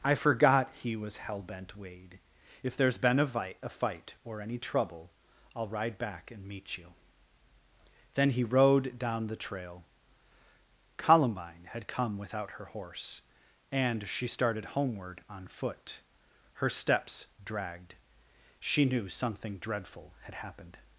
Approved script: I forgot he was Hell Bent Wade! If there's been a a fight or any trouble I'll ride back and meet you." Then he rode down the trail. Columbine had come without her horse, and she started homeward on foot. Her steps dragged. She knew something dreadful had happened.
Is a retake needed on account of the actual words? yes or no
yes